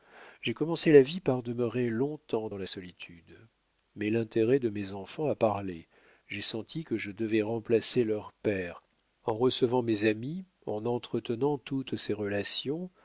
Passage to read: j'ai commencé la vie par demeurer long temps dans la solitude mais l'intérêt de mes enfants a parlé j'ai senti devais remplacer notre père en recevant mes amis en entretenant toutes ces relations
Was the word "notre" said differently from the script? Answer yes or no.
yes